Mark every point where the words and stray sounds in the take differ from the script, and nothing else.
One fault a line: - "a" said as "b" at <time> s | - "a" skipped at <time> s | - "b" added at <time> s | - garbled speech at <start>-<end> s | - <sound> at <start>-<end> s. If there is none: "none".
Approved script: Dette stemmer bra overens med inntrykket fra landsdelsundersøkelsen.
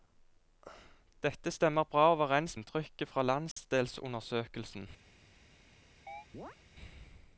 - "med" skipped at 2.6 s
- dropout at 3.5-3.6 s
- chirp at 6.1-6.6 s